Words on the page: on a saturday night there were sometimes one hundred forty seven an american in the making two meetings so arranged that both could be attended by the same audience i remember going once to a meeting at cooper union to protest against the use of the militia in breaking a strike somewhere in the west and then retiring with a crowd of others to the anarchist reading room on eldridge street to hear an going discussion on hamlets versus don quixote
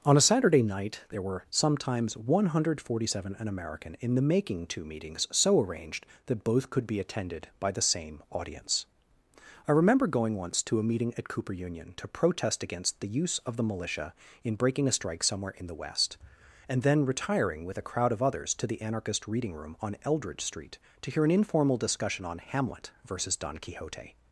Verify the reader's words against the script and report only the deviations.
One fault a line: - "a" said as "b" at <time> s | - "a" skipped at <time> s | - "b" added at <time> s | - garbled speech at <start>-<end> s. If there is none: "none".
- "going" said as "informal" at 21.3 s
- "hamlets" said as "hamlet" at 22.4 s